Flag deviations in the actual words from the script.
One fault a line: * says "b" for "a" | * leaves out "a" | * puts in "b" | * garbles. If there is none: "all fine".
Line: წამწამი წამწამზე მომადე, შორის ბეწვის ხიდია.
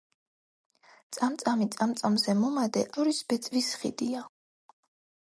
all fine